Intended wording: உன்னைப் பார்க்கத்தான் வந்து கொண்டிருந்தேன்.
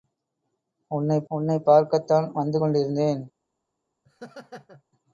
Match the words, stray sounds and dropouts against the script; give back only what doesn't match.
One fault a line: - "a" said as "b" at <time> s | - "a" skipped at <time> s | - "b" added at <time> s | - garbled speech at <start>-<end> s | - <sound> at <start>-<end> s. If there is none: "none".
- "உன்னைப்" added at 1.3 s
- laugh at 4.0-4.8 s